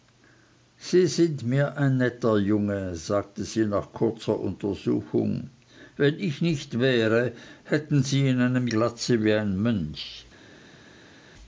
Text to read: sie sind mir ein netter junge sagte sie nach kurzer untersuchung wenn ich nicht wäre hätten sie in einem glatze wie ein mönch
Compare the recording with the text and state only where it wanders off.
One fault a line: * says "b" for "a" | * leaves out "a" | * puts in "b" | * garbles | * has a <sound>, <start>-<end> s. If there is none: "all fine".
all fine